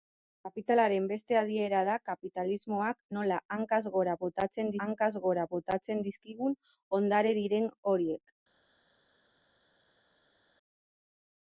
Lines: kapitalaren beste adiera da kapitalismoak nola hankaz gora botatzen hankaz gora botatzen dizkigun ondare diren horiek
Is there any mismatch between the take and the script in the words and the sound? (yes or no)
no